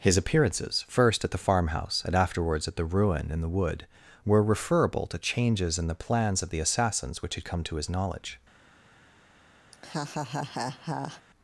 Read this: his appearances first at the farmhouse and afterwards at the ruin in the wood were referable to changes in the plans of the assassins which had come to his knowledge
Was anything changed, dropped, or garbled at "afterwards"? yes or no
no